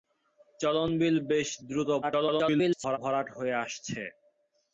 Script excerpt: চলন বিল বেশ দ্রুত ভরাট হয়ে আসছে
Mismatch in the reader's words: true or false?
true